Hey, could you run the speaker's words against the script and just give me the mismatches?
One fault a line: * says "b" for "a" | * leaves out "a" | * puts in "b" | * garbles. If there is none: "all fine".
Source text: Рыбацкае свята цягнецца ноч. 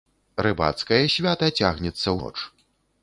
all fine